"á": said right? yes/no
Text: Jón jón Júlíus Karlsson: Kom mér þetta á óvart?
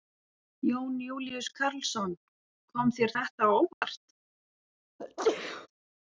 yes